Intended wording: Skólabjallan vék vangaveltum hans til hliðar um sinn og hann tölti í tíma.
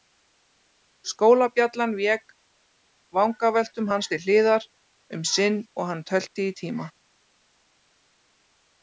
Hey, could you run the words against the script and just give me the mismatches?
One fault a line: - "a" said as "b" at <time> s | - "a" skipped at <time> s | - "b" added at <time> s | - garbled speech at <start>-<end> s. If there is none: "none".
none